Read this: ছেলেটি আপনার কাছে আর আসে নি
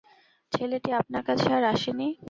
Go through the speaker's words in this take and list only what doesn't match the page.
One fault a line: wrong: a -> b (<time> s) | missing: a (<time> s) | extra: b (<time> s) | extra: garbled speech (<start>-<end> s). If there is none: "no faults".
no faults